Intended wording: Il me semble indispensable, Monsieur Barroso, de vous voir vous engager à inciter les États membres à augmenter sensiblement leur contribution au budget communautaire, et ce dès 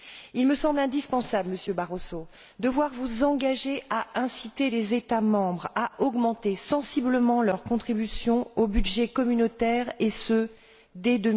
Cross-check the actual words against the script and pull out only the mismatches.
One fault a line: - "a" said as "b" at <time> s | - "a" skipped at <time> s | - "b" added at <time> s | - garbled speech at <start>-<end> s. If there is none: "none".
- "vous" skipped at 2.7 s